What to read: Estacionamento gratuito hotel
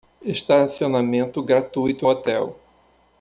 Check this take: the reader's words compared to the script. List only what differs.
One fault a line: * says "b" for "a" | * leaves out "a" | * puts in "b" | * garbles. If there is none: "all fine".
all fine